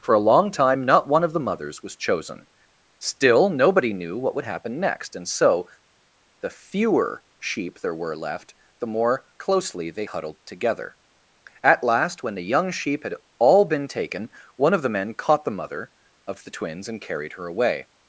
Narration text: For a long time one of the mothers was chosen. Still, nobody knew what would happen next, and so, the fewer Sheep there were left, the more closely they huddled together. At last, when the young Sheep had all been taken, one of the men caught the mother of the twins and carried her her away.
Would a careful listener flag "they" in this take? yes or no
no